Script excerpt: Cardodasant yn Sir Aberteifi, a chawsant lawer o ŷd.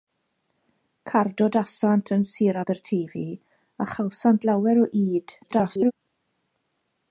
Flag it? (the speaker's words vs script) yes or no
yes